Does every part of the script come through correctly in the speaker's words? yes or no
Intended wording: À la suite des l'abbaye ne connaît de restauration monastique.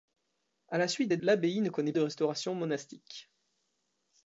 yes